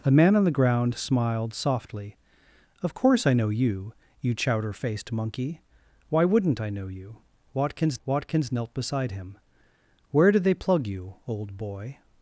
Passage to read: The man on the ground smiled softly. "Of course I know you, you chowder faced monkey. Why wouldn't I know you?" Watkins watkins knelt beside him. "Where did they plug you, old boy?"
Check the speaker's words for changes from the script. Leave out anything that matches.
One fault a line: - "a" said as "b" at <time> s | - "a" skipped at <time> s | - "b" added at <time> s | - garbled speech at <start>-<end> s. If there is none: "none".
none